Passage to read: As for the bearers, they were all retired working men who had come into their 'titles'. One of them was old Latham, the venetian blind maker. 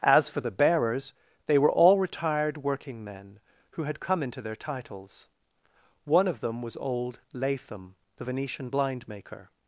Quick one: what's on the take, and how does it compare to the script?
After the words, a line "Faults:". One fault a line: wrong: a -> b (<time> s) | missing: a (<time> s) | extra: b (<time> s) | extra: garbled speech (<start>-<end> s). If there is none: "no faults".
As for the bearers, they were all retired working men who had come into their 'titles'. One of them was old Latham, the venetian blind maker.
Faults:
no faults